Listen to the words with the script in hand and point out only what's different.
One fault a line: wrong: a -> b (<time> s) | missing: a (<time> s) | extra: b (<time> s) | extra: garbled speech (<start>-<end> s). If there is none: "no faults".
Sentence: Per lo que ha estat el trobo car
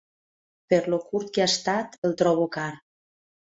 extra: curt (1.1 s)